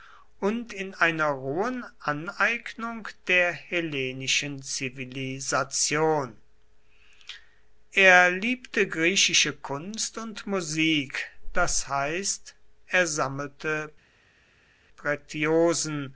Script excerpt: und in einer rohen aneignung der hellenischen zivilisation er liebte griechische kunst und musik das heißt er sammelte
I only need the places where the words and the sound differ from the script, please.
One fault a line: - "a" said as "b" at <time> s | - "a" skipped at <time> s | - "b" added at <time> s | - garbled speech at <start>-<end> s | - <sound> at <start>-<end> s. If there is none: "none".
none